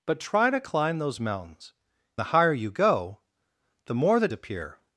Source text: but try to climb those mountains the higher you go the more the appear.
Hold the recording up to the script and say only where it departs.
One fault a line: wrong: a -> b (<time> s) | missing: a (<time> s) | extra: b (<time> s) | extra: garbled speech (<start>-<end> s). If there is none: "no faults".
no faults